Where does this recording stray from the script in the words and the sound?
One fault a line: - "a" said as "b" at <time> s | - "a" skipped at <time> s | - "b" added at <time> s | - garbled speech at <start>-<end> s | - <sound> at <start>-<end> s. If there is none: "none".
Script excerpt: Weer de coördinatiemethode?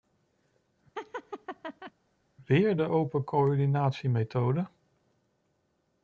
- laugh at 1.0-1.9 s
- "open" added at 2.8 s